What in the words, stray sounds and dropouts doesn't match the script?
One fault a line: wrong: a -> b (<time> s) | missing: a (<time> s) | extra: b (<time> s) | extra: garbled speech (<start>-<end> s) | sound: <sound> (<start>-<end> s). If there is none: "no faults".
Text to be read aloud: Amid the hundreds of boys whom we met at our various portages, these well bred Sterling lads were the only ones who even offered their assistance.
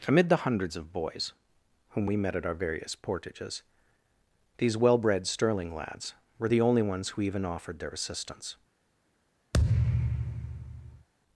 sound: thud (9.5-11.1 s)